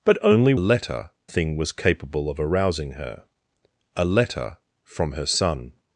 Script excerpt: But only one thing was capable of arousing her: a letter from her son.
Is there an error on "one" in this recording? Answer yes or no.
yes